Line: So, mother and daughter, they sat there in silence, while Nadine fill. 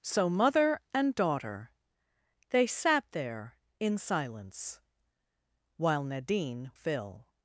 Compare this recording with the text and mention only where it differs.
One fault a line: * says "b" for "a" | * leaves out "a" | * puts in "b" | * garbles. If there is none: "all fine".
all fine